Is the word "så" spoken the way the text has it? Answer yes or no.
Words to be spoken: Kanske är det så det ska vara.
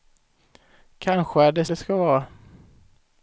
no